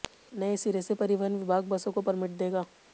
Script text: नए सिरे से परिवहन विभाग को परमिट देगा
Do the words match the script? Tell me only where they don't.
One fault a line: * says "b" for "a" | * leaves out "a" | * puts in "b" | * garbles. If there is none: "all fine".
* puts in "बसों"